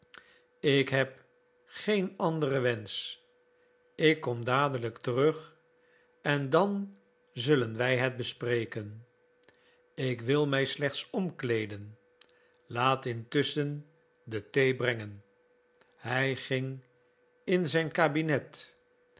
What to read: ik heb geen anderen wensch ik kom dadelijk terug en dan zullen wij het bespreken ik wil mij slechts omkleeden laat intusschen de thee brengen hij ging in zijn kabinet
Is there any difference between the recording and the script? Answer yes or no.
no